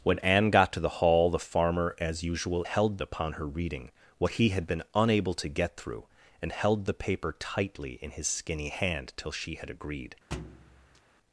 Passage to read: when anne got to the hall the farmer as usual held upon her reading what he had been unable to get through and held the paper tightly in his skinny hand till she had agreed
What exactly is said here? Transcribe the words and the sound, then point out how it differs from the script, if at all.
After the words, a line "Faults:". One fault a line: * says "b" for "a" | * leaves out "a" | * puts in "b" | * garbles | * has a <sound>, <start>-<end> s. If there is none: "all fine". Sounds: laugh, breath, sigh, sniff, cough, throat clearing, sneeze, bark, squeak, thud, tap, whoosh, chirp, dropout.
when anne got to the hall the farmer as usual held upon her reading what he had been unable to get through and held the paper tightly in his skinny hand till she had agreed
Faults:
* has a thud, 10.3-11.0 s